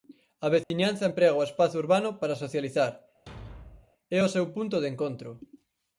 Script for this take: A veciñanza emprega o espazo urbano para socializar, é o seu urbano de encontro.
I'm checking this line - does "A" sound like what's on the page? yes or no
yes